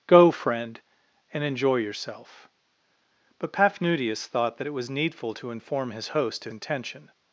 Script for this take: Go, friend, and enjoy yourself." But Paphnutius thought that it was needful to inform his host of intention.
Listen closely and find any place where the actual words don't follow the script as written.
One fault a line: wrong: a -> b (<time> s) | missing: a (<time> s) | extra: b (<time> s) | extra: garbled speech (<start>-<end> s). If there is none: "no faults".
no faults